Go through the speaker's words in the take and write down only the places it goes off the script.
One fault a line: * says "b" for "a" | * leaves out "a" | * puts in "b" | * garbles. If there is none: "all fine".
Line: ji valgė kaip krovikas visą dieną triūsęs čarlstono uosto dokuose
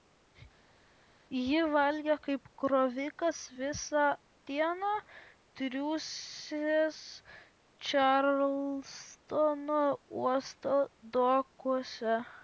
all fine